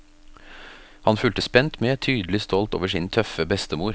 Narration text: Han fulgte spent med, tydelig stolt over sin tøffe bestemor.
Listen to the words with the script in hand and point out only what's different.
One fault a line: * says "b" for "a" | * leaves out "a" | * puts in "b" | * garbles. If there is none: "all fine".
all fine